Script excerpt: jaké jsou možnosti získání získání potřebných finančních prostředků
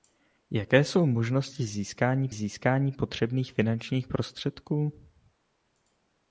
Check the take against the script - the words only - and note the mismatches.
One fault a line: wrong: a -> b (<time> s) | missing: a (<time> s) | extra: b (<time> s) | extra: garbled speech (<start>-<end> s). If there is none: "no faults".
no faults